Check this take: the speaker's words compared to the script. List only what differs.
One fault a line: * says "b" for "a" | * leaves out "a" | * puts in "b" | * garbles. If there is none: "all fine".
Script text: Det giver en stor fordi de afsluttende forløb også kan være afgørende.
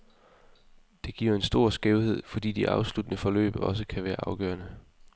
* puts in "skævhed"